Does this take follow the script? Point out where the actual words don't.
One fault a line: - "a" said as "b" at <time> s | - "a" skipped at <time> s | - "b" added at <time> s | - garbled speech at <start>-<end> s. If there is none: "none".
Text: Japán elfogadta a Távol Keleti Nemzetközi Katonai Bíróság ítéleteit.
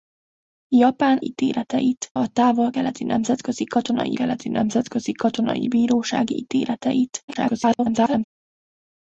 - "elfogadta" said as "ítéleteit" at 1.2 s
- "Keleti Nemzetközi Katonai" added at 4.1 s
- garbled speech at 7.3-8.2 s